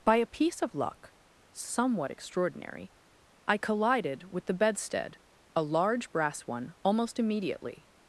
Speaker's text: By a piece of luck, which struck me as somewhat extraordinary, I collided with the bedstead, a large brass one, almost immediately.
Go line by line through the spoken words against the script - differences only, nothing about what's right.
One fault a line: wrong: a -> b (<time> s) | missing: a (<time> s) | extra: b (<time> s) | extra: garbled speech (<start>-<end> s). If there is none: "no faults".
missing: which struck me as (1.1 s)